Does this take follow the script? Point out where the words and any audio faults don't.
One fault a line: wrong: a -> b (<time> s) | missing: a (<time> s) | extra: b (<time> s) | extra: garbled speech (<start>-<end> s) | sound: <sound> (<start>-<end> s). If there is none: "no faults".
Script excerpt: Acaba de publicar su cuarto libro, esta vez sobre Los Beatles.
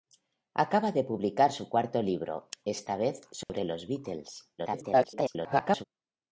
sound: dropout (3.4-3.5 s)
extra: garbled speech (4.6-5.8 s)